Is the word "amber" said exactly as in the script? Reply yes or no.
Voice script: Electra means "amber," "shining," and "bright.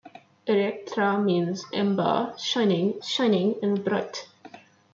yes